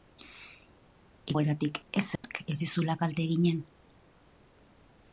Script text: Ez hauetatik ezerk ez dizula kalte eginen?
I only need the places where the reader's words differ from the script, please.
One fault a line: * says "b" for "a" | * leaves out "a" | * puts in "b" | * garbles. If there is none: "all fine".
all fine